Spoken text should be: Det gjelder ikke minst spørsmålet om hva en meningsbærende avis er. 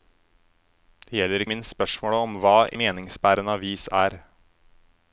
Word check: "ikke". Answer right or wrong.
wrong